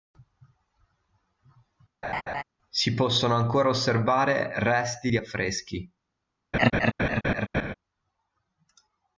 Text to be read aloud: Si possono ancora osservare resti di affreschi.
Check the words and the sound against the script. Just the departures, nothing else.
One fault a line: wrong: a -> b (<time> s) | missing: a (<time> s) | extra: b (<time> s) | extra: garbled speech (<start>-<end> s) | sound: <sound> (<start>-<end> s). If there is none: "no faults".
sound: laugh (2.0-2.4 s)
sound: laugh (6.5-7.7 s)